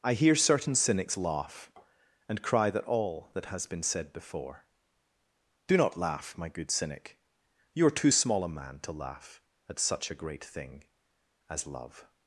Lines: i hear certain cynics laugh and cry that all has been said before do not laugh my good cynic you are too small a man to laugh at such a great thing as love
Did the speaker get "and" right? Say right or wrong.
right